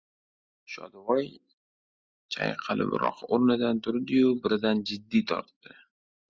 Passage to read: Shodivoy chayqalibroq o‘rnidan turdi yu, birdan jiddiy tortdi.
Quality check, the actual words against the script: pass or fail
pass